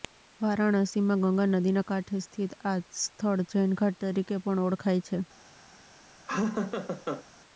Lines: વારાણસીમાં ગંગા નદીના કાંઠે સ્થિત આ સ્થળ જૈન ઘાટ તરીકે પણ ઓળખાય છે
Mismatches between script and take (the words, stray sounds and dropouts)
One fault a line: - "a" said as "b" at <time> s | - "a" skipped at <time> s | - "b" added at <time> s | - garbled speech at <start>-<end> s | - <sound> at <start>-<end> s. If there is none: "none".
- laugh at 6.3-7.2 s